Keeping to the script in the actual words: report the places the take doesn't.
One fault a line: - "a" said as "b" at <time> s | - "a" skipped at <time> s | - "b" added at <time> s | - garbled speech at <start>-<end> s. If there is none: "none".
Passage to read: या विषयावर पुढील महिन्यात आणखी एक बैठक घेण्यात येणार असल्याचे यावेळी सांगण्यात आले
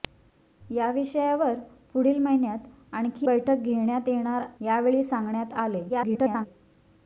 - "एक" skipped at 3.3 s
- "असल्याचे" skipped at 4.5 s
- garbled speech at 5.9-6.5 s